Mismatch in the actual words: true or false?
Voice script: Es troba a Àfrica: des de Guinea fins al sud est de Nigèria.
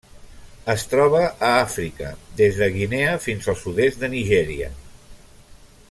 false